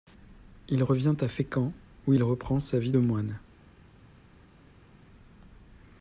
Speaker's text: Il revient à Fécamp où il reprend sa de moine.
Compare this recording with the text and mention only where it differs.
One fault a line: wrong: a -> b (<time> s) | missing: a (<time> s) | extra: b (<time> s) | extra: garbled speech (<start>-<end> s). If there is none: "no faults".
extra: vie (2.8 s)